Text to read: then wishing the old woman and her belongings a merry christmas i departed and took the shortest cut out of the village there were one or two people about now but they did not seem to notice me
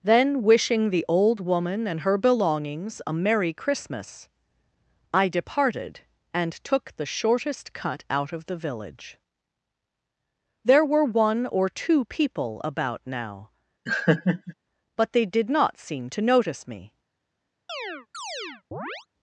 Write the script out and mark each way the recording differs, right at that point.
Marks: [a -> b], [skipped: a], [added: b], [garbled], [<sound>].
then wishing the old woman and her belongings a merry christmas i departed and took the shortest cut out of the village there were one or two people about now [laugh] but they did not seem to notice me [chirp]